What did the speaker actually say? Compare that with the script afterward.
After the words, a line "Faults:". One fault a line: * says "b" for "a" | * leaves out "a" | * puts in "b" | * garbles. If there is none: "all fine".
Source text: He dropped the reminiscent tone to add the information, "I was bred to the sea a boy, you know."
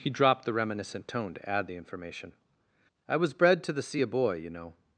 He dropped the reminiscent tone to add the information, "I was bred to the sea a boy, you know."
Faults:
all fine